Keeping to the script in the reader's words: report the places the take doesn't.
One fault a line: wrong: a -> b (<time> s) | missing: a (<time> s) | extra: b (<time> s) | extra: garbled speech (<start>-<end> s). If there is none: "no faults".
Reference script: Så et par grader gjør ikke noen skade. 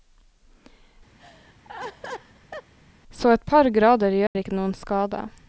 no faults